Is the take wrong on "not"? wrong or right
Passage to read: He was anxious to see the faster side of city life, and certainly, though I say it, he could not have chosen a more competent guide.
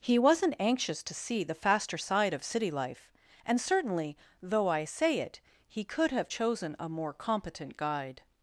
wrong